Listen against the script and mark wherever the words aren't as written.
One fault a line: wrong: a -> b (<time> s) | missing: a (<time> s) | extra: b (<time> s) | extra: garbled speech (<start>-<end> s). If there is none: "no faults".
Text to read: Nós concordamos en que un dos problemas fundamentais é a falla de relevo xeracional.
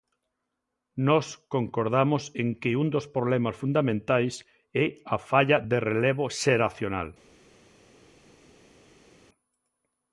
no faults